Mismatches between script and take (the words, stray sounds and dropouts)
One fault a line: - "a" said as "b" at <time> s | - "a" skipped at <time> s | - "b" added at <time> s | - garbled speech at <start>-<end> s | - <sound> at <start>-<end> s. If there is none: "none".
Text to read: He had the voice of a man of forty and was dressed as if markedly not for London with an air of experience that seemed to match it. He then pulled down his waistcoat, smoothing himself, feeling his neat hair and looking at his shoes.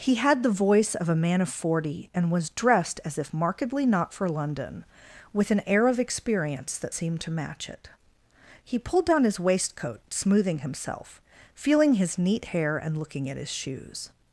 - "then" skipped at 8.8 s